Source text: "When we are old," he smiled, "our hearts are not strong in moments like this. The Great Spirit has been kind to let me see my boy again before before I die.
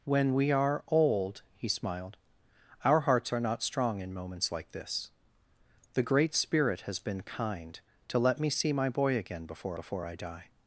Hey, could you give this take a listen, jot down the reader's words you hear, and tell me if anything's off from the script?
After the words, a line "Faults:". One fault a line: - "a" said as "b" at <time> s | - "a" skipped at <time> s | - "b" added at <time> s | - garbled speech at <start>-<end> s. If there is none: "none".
"When we are old," he smiled, "our hearts are not strong in moments like this. The Great Spirit has been kind to let me see my boy again before before I die.
Faults:
none